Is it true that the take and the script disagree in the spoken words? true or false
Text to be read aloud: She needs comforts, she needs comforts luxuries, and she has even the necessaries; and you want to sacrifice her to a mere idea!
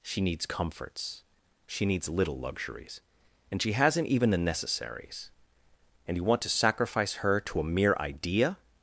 true